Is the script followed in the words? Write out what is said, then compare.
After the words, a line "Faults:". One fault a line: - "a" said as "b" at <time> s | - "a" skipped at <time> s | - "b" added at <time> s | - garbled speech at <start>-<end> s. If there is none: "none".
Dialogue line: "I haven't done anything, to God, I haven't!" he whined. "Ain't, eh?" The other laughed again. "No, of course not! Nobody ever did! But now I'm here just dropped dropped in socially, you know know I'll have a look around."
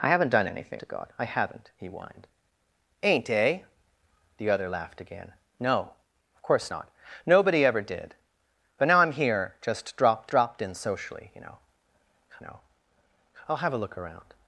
"I haven't done anything, to God, I haven't!" he whined. "Ain't, eh?" The other laughed again. "No, of course not! Nobody ever did! But now I'm here just dropped dropped in socially, you know know I'll have a look around."
Faults:
none